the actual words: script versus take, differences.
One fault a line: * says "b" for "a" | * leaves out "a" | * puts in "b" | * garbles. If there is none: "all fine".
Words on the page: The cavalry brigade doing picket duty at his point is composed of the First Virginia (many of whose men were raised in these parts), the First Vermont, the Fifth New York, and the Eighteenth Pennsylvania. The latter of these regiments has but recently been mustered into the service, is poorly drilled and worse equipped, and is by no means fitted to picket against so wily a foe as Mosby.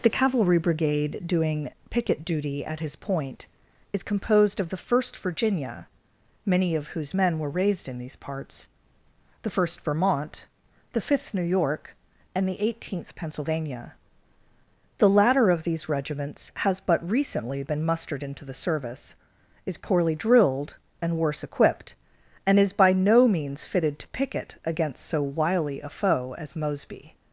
all fine